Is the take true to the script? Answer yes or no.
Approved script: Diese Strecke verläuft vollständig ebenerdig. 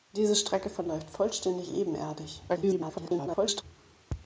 no